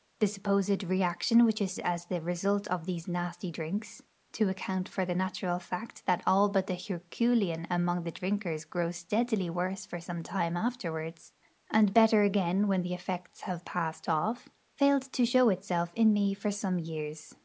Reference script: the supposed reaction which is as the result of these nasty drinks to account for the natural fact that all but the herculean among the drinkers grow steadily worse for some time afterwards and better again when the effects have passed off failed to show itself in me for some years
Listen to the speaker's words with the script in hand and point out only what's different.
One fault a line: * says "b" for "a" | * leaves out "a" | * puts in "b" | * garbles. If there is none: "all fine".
all fine